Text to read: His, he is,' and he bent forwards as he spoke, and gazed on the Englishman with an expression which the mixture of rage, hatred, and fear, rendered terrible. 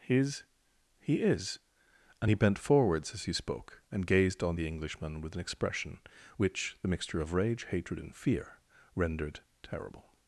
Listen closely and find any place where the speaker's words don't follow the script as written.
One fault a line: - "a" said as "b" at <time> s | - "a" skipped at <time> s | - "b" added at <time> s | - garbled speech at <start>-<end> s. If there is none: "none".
none